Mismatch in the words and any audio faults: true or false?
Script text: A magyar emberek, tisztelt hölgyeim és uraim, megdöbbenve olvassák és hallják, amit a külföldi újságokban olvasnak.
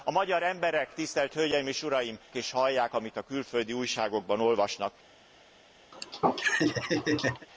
true